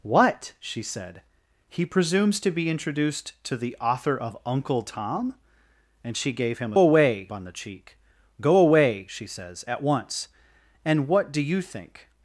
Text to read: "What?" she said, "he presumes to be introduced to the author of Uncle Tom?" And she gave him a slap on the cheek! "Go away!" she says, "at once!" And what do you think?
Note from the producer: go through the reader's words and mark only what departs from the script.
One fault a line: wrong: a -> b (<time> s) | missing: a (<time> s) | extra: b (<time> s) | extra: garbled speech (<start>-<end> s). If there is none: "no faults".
wrong: slap -> away (6.8 s)